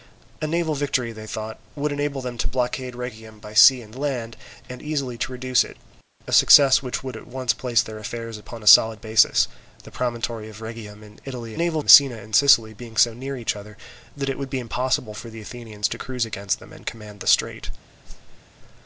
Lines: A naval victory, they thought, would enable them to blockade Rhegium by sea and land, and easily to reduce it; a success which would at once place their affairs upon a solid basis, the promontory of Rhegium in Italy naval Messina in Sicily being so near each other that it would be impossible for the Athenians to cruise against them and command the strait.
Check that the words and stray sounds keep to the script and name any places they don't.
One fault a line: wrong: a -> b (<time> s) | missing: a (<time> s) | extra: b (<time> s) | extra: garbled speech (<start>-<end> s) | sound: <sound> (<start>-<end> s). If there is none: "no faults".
sound: whoosh (18.0-18.4 s)